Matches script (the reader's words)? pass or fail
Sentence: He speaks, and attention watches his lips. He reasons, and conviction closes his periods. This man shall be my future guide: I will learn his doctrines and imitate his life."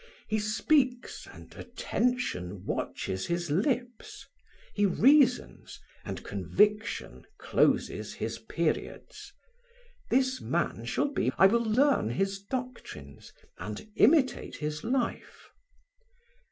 fail